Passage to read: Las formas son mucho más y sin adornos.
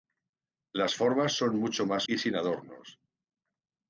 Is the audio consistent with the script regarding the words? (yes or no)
yes